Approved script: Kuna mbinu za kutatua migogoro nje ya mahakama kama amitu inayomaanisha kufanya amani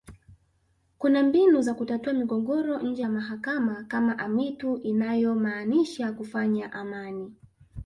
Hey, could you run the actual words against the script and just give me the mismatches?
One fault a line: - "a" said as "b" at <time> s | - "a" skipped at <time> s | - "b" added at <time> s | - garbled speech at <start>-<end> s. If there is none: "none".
none